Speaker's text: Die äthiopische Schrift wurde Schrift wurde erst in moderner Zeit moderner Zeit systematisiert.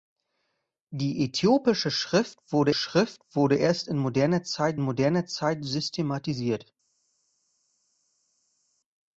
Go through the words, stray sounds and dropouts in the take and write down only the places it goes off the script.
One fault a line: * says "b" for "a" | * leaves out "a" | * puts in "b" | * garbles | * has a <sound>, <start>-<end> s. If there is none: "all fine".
all fine